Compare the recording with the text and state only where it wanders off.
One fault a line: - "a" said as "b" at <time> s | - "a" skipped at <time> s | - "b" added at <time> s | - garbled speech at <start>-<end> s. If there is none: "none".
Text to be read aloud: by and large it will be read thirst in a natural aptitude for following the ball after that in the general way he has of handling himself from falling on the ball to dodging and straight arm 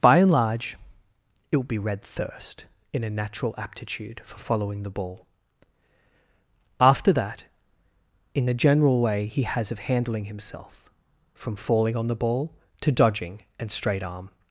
none